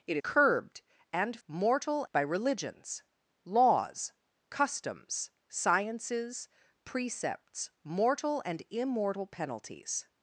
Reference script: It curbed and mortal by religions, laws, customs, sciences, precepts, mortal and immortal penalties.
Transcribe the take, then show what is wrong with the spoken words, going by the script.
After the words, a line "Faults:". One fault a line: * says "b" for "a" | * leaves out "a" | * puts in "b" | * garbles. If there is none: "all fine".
It curbed and mortal by religions, laws, customs, sciences, precepts, mortal and immortal penalties.
Faults:
all fine